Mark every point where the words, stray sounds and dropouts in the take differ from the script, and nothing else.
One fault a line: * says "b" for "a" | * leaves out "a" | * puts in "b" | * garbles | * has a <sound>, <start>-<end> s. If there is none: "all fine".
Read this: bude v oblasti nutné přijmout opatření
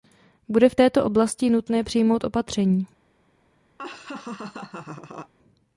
* puts in "této"
* has a laugh, 3.8-5.3 s